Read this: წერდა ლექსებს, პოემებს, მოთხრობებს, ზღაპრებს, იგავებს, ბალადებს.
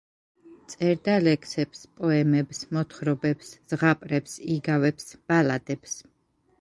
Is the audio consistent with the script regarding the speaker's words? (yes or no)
yes